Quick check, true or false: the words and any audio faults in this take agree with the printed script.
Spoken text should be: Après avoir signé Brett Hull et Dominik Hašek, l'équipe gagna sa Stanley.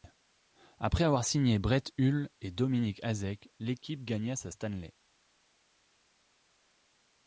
true